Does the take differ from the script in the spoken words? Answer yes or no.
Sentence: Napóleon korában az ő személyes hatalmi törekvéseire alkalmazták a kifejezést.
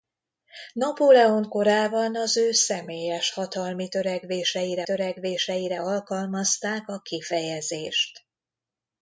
yes